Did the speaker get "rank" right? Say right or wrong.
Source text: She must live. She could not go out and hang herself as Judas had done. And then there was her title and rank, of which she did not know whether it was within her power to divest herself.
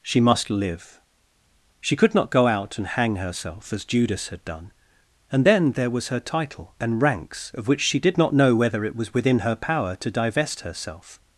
wrong